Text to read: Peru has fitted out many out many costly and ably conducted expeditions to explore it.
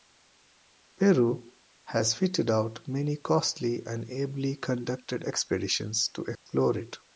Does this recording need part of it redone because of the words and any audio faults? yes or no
yes